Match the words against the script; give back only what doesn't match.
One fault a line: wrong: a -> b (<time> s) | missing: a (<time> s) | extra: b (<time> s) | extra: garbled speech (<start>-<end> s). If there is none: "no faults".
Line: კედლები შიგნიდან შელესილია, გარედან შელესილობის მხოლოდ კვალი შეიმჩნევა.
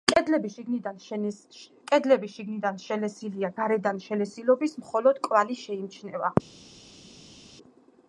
no faults